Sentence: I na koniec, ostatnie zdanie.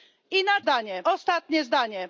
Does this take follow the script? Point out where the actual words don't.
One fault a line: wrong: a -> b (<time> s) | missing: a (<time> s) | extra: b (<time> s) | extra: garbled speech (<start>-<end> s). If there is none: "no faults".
wrong: koniec -> zdanie (0.6 s)